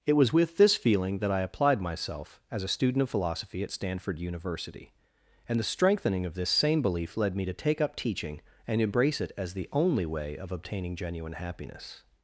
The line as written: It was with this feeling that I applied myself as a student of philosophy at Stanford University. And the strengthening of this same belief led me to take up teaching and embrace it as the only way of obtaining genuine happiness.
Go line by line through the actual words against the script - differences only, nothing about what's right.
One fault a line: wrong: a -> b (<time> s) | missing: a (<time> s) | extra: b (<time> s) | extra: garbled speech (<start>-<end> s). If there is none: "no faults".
no faults